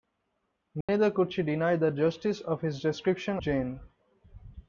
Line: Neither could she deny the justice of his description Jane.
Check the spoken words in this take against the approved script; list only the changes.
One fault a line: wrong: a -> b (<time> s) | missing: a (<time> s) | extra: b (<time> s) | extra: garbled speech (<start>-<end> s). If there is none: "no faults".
no faults